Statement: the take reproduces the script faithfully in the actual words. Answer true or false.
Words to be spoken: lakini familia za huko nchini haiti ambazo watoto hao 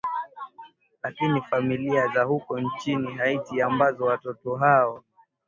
true